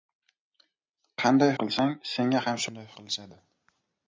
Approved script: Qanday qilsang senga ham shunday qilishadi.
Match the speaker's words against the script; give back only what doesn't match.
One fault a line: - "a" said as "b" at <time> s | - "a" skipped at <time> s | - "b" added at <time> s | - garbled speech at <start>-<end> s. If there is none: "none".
none